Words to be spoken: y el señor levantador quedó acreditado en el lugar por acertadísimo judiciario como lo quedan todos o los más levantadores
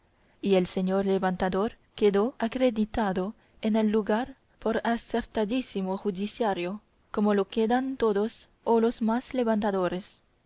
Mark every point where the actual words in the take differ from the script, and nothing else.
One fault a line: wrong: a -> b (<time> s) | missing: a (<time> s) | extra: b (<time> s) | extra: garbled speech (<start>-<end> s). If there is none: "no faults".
no faults